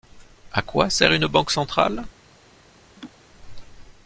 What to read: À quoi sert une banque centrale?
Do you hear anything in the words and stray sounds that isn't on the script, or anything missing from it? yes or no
yes